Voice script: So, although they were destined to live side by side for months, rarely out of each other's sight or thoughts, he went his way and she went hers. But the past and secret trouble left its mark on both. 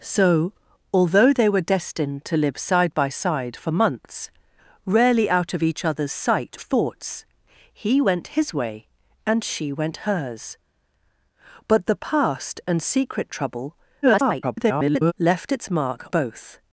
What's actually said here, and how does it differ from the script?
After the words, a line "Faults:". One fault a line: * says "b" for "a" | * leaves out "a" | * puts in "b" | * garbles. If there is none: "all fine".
So, although they were destined to live side by side for months, rarely out of each other's sight thoughts, he went his way and she went hers. But the past and secret trouble [garbled] left its mark both.
Faults:
* leaves out "or"
* garbles
* leaves out "on"